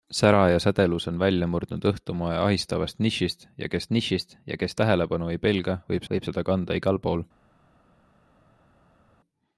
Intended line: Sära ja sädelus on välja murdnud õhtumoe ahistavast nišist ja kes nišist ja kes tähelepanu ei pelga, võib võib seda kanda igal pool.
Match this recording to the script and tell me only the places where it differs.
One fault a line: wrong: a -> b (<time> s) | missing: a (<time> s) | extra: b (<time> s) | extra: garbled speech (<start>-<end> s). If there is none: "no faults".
no faults